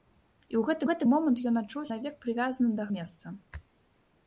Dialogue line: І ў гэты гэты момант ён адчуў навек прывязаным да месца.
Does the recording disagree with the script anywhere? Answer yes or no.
no